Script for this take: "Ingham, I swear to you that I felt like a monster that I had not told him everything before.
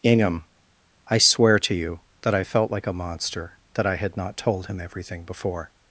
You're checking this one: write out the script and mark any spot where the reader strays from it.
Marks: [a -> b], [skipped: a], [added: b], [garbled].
"Ingham, I swear to you that I felt like a monster that I had not told him everything before.